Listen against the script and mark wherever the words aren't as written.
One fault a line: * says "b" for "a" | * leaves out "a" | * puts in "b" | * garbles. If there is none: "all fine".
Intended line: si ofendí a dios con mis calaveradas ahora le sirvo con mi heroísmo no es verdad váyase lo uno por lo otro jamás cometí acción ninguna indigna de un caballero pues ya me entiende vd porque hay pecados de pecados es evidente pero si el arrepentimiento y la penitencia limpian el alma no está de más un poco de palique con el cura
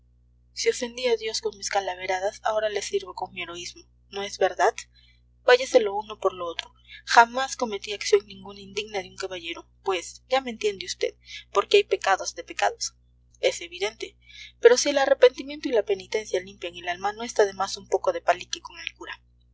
all fine